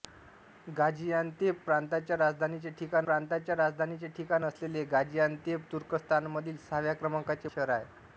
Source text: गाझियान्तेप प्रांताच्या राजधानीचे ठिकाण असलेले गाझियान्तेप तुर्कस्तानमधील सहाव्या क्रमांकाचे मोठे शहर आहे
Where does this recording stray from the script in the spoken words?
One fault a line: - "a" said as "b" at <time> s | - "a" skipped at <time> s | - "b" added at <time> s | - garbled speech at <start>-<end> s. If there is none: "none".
- "प्रांताच्या राजधानीचे ठिकाण" added at 3.0 s
- "मोठे" skipped at 7.5 s